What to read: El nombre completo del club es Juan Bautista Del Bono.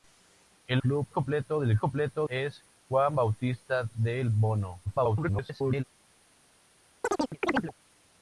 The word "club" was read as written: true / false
false